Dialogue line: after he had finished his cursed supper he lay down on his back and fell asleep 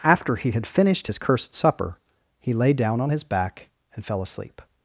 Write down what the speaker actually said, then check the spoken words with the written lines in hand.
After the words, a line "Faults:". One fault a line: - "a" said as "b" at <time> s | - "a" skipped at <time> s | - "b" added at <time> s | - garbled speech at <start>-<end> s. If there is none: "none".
after he had finished his cursed supper he lay down on his back and fell asleep
Faults:
none